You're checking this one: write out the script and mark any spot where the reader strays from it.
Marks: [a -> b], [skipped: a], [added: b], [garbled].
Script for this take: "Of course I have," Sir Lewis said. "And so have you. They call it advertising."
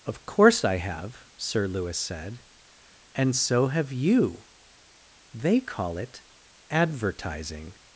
"Of course I have," Sir Lewis said. "And so have you. They call it advertising."